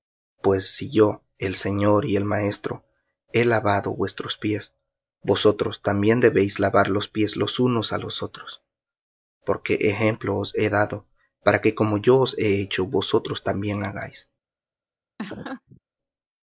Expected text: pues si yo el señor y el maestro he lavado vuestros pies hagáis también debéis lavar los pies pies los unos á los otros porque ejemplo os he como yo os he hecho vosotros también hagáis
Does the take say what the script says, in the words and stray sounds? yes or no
no